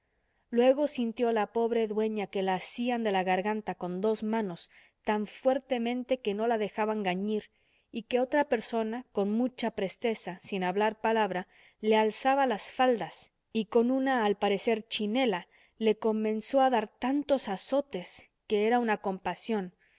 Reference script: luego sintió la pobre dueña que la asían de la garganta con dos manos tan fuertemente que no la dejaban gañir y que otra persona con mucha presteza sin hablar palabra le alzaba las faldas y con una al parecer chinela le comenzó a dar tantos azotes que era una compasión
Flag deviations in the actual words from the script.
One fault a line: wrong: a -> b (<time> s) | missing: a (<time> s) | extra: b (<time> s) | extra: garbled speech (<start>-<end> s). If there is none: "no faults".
no faults